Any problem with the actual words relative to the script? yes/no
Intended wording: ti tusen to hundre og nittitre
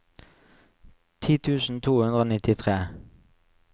no